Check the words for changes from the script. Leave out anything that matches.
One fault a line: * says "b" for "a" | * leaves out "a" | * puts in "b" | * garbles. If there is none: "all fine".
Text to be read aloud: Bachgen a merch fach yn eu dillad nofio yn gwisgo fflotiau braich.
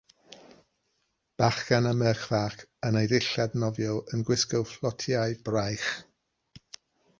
all fine